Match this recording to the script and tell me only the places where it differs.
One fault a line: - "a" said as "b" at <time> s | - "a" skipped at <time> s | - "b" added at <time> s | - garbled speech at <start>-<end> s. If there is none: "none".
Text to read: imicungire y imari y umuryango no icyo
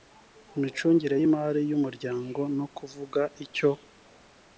- "kuvuga" added at 2.8 s